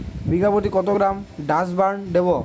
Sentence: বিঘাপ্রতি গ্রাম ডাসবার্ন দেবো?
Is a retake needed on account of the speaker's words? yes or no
yes